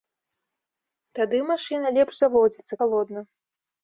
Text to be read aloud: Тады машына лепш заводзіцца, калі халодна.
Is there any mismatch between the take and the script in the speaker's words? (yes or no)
yes